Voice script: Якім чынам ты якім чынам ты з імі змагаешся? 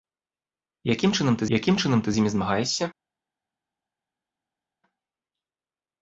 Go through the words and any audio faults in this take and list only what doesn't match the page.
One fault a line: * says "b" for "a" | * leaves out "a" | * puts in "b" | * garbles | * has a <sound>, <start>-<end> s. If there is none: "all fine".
all fine